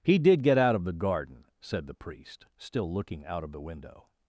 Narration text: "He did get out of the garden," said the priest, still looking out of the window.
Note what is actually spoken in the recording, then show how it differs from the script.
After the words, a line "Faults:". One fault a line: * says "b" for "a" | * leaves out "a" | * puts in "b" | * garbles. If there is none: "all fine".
"He did get out of the garden," said the priest, still looking out of the window.
Faults:
all fine